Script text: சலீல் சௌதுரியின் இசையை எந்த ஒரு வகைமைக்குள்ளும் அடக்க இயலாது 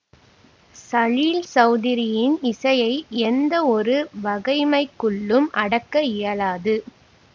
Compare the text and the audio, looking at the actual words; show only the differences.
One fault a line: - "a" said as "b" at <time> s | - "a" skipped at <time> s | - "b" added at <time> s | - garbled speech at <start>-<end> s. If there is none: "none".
none